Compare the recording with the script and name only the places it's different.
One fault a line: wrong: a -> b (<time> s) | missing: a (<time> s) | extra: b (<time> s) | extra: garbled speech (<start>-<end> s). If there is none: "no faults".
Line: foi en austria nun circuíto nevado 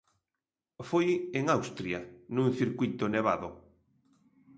no faults